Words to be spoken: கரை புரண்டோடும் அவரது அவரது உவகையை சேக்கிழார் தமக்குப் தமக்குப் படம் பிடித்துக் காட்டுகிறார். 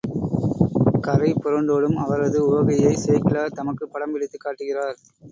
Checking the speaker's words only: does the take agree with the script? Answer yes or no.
no